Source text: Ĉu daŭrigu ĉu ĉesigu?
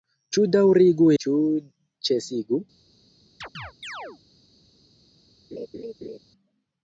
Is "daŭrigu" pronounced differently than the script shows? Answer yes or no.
no